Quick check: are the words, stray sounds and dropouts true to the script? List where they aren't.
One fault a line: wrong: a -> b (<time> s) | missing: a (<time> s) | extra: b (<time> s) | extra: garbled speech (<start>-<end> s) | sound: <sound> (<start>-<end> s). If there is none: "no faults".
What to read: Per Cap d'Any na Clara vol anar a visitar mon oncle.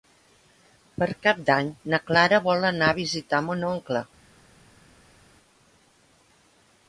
no faults